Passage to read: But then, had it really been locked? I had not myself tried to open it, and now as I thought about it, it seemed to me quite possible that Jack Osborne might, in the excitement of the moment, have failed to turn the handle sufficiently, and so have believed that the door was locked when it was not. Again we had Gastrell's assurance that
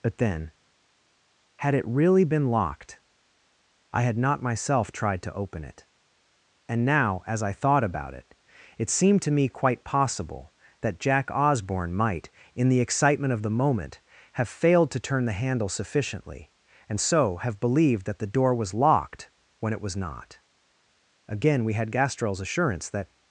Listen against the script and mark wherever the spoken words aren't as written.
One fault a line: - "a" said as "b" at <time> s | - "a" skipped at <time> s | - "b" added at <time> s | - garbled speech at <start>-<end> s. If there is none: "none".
none